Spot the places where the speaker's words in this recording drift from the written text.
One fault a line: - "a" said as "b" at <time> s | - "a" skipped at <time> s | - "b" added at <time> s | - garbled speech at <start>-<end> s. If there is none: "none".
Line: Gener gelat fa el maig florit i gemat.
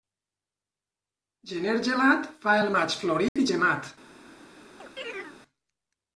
none